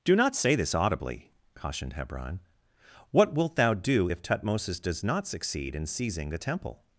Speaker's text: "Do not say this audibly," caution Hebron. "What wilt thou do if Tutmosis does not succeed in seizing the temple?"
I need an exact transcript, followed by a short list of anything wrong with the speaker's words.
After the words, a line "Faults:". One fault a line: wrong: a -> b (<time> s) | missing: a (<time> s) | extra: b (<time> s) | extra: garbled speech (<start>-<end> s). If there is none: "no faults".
"Do not say this audibly," cautioned Hebron. "What wilt thou do if Tutmosis does not succeed in seizing the temple?"
Faults:
wrong: caution -> cautioned (1.5 s)